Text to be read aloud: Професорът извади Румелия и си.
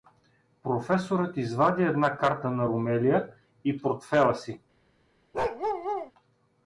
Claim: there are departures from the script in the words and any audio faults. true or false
true